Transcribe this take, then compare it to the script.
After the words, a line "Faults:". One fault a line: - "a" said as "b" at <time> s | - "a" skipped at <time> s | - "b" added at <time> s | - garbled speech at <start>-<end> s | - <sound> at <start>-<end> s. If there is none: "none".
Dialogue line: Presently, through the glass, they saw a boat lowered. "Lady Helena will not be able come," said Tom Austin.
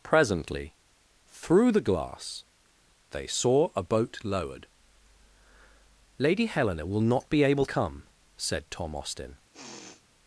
Presently, through the glass, they saw a boat lowered. "Lady Helena will not be able come," said Tom Austin.
Faults:
- sniff at 9.5-10.0 s